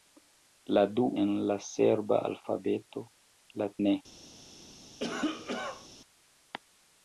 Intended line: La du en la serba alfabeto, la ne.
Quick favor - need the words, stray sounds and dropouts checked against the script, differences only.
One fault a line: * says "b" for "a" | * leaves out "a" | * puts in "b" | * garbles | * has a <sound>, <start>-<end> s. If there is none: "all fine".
* has a cough, 5.0-5.9 s